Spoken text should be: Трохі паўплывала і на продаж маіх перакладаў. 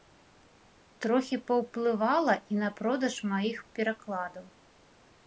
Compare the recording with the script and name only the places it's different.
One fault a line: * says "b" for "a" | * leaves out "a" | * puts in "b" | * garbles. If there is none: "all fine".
all fine